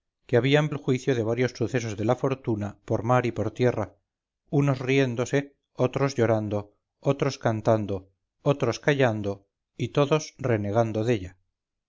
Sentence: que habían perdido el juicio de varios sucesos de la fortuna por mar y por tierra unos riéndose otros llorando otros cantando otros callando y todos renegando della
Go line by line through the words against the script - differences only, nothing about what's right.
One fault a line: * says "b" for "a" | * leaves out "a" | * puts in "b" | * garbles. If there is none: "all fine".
* leaves out "perdido"